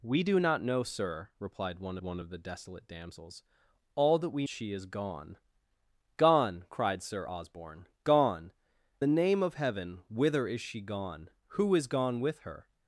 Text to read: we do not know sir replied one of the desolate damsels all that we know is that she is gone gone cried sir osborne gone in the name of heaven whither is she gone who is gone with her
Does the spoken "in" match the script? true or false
false